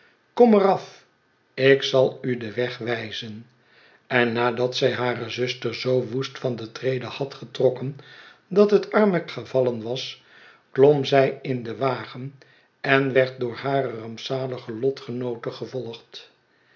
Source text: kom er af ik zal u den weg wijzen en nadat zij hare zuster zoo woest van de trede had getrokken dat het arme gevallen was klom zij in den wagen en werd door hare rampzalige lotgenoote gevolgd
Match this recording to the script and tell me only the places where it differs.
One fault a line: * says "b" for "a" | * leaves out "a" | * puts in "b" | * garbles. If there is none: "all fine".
all fine